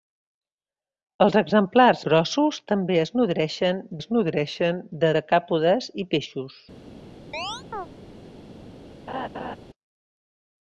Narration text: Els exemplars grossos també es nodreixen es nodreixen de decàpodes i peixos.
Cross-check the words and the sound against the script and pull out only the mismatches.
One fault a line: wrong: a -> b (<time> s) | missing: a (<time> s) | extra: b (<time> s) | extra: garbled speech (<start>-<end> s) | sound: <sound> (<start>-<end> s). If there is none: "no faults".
sound: chirp (7.3-7.9 s)
sound: laugh (9.1-9.6 s)